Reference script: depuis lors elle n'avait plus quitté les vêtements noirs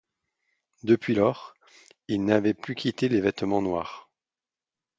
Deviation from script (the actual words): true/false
true